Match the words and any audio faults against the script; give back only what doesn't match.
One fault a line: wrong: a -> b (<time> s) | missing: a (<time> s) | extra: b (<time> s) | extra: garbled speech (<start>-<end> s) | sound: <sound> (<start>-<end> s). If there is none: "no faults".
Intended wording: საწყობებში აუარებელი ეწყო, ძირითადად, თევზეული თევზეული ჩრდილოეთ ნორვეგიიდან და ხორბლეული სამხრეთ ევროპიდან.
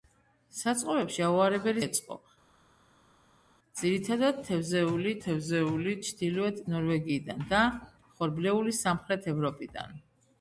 no faults